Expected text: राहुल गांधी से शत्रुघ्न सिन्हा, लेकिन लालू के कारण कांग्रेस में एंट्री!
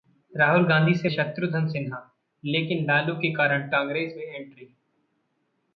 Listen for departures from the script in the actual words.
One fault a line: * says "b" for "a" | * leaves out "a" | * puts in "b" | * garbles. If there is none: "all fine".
all fine